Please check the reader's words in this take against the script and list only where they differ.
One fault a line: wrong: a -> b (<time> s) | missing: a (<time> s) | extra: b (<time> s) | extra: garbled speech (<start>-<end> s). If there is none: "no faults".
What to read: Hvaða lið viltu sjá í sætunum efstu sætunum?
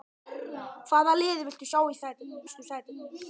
no faults